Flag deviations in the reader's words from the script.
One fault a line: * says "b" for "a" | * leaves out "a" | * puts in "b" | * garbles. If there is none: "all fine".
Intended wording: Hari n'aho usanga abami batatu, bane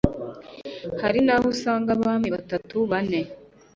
all fine